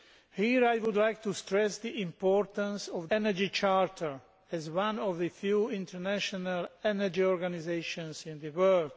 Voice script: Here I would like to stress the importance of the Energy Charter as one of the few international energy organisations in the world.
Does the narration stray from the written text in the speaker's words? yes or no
yes